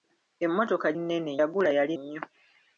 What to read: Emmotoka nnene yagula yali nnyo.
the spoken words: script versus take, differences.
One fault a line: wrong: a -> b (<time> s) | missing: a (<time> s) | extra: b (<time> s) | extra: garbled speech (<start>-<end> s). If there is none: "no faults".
no faults